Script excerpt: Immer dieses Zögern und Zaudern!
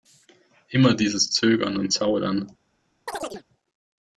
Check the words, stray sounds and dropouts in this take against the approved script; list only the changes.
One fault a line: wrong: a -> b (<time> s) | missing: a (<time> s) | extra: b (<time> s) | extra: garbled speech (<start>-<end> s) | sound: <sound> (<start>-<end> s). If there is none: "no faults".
sound: chirp (3.1-3.4 s)